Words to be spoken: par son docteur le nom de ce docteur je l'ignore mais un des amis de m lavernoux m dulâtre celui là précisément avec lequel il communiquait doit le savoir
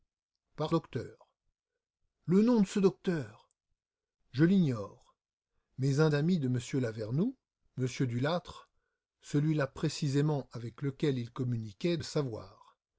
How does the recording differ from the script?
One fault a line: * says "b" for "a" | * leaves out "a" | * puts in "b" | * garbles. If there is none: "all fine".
* leaves out "son"
* leaves out "des"
* leaves out "doit"